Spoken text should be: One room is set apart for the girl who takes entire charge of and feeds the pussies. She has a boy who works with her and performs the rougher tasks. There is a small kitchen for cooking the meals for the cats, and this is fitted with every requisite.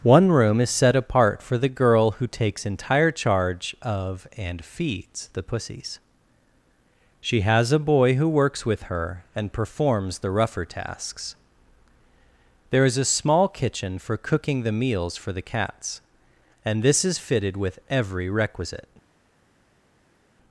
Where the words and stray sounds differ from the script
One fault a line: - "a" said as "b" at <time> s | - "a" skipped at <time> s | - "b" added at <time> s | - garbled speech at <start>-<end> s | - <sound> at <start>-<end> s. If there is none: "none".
none